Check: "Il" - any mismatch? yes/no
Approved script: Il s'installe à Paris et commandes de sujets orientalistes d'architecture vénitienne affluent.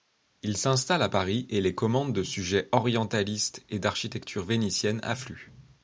no